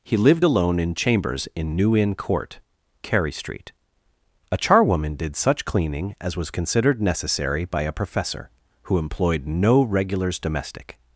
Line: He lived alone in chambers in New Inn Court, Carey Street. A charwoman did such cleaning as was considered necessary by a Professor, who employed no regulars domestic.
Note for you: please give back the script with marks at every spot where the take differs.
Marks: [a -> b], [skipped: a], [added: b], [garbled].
He lived alone in chambers in New Inn Court, Carey Street. A charwoman did such cleaning as was considered necessary by a Professor, who employed no regulars domestic.